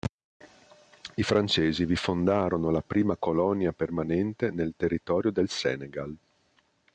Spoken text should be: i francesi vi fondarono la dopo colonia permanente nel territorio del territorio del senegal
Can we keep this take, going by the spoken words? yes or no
no